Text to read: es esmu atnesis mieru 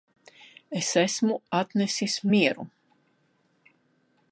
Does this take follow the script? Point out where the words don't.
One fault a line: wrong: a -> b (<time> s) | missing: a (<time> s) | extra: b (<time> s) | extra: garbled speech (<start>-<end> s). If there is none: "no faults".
no faults